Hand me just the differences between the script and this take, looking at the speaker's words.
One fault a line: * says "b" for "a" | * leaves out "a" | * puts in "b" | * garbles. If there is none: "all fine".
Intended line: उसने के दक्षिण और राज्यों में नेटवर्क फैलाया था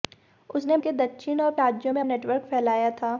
all fine